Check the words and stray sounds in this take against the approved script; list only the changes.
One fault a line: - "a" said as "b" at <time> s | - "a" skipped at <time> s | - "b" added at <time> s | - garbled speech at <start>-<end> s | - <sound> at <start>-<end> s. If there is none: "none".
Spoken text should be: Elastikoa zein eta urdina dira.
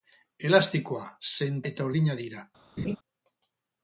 - laugh at 2.8-3.0 s